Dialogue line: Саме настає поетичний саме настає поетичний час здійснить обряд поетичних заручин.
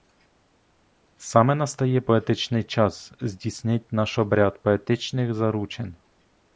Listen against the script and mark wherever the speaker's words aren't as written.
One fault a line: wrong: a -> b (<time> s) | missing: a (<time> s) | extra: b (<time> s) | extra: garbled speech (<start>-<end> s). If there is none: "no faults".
missing: саме настає поетичний (2.6 s)
extra: наш (3.9 s)